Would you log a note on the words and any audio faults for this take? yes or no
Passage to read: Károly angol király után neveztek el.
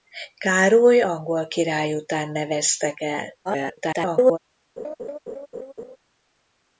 yes